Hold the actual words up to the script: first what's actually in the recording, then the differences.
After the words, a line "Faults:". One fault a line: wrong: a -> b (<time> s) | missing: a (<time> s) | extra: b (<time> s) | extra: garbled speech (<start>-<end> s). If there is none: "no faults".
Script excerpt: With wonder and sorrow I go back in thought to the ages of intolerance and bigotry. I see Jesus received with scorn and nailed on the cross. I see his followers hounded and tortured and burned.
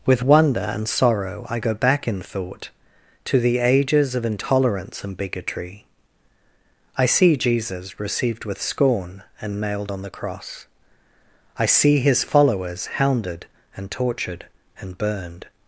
With wonder and sorrow I go back in thought to the ages of intolerance and bigotry. I see Jesus received with scorn and nailed on the cross. I see his followers hounded and tortured and burned.
Faults:
no faults